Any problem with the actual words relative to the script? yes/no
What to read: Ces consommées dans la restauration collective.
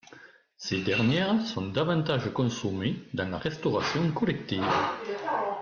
yes